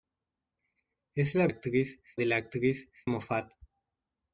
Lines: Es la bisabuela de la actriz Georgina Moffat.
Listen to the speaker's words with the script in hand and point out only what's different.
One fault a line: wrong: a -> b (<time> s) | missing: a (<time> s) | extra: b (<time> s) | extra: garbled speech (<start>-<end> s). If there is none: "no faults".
wrong: bisabuela -> actriz (1.5 s)
missing: Georgina (2.9 s)